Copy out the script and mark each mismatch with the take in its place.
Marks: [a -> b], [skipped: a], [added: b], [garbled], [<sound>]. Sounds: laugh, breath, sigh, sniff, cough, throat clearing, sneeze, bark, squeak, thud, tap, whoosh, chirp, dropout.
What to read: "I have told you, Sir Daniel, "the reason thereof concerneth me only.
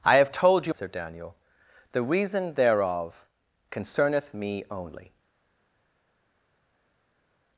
"I have told you, Sir Daniel, "the reason thereof concerneth me only.